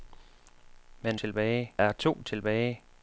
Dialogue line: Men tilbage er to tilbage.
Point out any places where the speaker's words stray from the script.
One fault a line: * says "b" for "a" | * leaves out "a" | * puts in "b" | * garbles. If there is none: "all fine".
all fine